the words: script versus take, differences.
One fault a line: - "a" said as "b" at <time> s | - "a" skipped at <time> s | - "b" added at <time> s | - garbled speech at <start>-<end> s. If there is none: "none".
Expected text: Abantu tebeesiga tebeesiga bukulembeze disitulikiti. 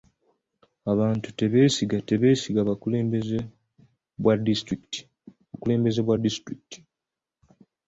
- "bwa" added at 6.0 s